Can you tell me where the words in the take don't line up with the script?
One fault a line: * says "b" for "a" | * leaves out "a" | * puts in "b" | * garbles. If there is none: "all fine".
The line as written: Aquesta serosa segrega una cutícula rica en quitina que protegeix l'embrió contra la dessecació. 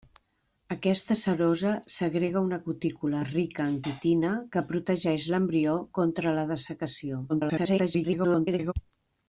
* garbles